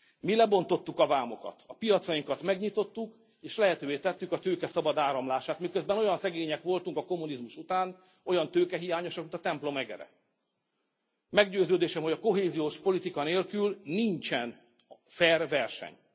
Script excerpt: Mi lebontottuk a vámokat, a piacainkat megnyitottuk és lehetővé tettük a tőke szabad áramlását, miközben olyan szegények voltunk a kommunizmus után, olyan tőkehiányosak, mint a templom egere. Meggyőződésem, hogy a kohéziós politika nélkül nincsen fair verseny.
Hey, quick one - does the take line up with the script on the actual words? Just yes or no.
yes